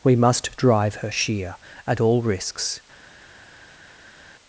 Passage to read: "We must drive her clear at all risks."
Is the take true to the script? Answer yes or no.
no